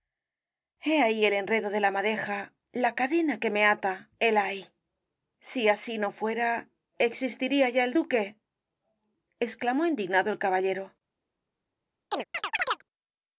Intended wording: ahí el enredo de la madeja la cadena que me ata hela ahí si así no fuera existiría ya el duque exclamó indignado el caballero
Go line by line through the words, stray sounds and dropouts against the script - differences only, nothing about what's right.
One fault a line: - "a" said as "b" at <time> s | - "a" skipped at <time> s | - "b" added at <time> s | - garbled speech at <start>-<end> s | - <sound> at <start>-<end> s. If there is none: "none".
- chirp at 12.1-12.8 s